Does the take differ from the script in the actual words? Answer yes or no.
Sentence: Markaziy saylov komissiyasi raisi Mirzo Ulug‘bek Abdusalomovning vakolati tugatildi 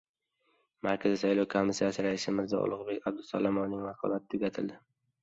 no